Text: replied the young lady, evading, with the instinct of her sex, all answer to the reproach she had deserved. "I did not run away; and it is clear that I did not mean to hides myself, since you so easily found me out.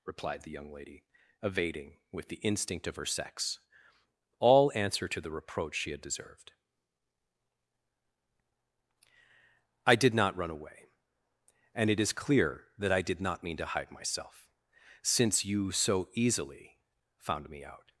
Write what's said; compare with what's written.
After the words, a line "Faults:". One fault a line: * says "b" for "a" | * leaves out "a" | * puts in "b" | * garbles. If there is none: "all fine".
replied the young lady, evading, with the instinct of her sex, all answer to the reproach she had deserved. "I did not run away; and it is clear that I did not mean to hide myself, since you so easily found me out.
Faults:
* says "hide" for "hides"